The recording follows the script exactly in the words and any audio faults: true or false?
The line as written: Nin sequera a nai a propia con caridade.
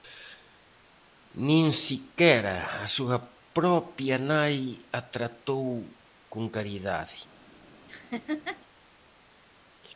false